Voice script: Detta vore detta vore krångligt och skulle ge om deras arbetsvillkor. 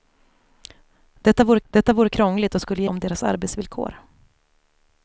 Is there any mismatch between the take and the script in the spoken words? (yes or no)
no